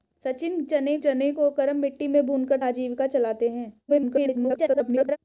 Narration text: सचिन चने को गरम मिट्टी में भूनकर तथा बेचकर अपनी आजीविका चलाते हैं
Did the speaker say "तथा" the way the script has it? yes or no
no